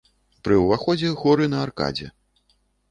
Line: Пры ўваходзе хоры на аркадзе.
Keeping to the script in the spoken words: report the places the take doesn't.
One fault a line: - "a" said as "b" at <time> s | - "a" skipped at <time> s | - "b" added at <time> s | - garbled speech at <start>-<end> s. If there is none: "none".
none